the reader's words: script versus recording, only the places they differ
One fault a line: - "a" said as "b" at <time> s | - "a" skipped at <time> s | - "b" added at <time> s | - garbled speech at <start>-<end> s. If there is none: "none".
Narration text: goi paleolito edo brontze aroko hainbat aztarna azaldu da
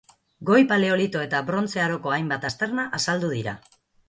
- "edo" said as "eta" at 1.2 s
- "da" said as "dira" at 3.4 s